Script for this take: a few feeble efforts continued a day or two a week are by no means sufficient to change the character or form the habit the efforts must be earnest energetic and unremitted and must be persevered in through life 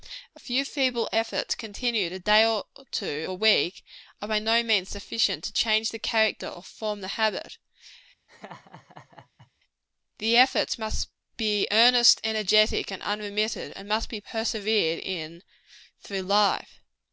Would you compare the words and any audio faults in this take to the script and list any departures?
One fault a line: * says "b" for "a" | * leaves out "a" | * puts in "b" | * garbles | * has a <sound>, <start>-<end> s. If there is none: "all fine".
* has a laugh, 8.3-9.5 s